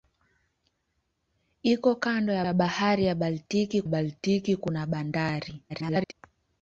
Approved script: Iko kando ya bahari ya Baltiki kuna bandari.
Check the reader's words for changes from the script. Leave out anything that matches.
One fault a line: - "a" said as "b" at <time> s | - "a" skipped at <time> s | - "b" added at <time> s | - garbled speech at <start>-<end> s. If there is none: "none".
- "ya" added at 2.4 s
- "Baltiki" added at 3.9 s
- garbled speech at 5.7-6.1 s